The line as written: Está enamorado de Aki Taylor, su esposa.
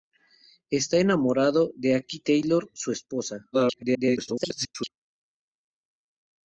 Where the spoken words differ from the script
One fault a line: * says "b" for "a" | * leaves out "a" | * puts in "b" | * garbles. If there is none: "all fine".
* garbles